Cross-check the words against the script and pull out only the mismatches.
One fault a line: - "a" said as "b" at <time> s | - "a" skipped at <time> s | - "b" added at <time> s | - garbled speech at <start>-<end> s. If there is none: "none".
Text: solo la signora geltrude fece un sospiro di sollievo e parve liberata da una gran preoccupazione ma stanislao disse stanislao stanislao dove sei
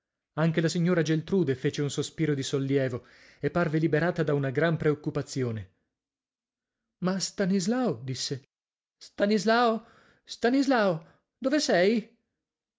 - "solo" said as "anche" at 0.4 s